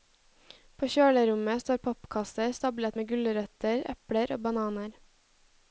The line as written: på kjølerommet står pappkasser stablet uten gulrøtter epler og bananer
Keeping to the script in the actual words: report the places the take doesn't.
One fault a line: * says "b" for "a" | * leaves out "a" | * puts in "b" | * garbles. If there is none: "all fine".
* says "med" for "uten"